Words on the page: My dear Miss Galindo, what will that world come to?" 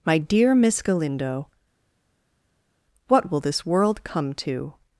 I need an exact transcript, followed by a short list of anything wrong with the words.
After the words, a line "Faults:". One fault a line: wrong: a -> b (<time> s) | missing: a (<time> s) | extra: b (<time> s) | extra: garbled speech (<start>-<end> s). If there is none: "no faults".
My dear Miss Galindo, what will this world come to?"
Faults:
wrong: that -> this (3.4 s)